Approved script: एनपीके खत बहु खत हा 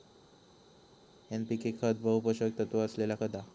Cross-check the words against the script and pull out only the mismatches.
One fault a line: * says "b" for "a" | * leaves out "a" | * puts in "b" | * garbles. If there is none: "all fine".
* puts in "पोषक तत्त्व असलेला"